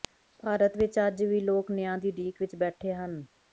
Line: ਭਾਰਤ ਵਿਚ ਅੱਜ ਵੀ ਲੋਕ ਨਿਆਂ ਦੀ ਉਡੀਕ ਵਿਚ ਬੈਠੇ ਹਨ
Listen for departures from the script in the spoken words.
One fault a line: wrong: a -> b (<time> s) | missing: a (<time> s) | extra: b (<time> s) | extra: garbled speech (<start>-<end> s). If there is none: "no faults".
no faults